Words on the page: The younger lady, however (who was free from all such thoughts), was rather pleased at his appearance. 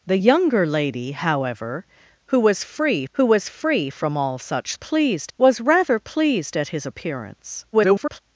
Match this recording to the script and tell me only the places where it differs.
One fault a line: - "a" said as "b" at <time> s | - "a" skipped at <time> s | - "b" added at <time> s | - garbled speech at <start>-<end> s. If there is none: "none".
- "who was free" added at 3.1 s
- "thoughts" said as "pleased" at 4.7 s
- garbled speech at 7.7-8.2 s